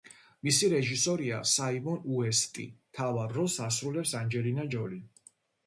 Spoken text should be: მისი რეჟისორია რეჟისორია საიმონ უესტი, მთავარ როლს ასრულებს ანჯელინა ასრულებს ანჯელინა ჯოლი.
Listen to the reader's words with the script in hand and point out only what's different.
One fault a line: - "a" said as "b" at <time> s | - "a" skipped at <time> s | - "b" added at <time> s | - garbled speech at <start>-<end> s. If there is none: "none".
- "რეჟისორია" skipped at 1.4 s
- "ასრულებს ანჯელინა" skipped at 4.7 s